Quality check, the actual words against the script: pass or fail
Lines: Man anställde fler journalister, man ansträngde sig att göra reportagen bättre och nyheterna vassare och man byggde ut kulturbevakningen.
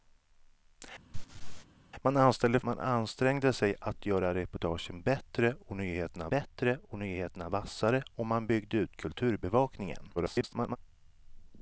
fail